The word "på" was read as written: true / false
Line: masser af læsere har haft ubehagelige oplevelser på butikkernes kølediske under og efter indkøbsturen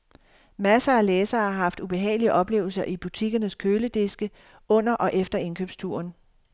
false